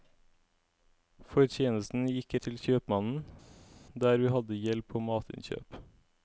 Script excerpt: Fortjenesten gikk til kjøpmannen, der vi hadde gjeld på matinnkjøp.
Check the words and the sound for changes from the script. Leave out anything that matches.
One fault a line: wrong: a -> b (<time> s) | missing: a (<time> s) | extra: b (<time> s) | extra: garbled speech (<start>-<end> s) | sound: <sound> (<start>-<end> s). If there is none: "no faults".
no faults